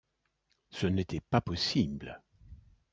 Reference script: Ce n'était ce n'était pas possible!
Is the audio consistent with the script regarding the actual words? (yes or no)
no